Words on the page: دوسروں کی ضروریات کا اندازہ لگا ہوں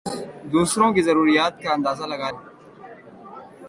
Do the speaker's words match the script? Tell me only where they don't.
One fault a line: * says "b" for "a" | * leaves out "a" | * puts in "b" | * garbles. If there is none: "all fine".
all fine